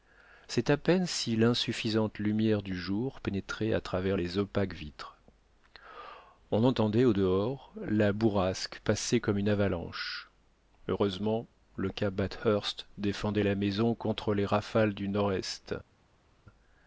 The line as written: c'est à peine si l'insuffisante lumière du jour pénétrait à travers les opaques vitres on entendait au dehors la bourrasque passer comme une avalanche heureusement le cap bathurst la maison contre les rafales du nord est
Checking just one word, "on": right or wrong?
right